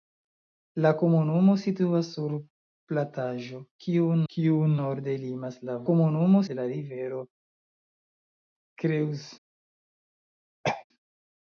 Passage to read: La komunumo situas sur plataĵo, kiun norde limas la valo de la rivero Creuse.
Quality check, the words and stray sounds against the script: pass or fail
fail